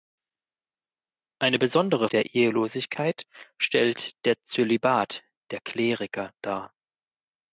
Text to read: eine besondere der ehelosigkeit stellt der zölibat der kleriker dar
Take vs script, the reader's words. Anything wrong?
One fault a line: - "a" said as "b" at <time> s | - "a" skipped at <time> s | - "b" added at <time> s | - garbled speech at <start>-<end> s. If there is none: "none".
none